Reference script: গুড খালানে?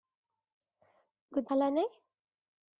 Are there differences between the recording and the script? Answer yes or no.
no